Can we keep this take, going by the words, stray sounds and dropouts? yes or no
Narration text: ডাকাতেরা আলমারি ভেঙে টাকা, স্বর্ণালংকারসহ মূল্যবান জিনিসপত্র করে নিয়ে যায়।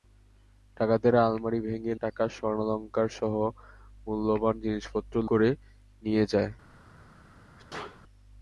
no